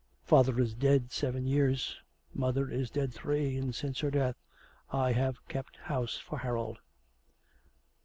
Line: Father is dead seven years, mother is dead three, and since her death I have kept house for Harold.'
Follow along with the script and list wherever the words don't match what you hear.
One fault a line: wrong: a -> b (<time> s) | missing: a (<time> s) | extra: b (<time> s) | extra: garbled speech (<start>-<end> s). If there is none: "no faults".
no faults